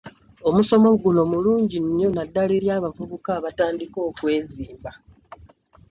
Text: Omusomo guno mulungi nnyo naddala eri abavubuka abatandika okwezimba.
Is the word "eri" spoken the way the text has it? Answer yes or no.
yes